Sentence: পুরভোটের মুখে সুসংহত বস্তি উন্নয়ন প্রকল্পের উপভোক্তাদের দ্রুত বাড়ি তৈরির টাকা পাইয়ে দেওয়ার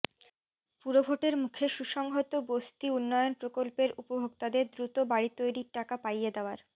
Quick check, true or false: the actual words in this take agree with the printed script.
true